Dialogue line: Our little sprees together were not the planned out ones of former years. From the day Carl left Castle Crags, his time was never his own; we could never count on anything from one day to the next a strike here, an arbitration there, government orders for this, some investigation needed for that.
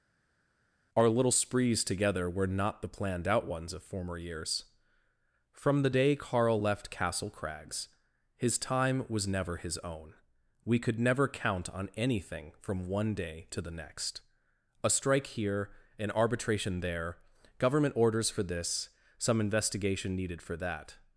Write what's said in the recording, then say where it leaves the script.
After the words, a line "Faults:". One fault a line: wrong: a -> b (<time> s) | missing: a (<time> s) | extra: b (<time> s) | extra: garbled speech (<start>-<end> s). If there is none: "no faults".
Our little sprees together were not the planned out ones of former years. From the day Carl left Castle Crags, his time was never his own; we could never count on anything from one day to the next a strike here, an arbitration there, government orders for this, some investigation needed for that.
Faults:
no faults